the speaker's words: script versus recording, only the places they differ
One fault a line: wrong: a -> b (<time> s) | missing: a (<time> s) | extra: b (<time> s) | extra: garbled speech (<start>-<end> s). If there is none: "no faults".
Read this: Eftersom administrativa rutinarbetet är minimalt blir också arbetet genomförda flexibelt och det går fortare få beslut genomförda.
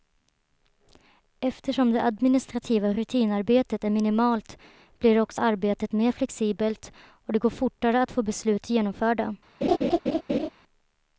extra: det (1.9 s)
wrong: genomförda -> mer (5.9 s)
extra: att (8.0 s)